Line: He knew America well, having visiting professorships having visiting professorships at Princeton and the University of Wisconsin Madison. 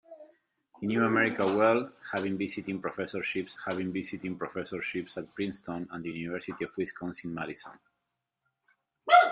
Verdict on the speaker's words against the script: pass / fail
pass